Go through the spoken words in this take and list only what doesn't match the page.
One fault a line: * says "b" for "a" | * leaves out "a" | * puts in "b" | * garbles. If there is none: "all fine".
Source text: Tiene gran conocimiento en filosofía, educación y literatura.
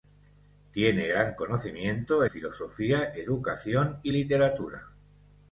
* leaves out "en"